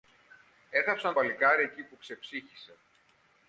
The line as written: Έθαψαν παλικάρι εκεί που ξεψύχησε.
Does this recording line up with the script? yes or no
yes